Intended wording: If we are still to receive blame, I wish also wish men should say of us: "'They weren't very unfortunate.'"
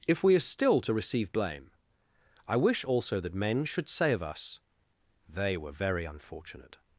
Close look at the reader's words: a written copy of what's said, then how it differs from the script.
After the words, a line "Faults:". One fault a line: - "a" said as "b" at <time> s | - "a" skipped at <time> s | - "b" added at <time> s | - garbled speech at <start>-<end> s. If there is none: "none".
If we are still to receive blame, I wish also that men should say of us: "'They were very unfortunate.'"
Faults:
- "wish" said as "that" at 3.2 s
- "weren't" said as "were" at 5.6 s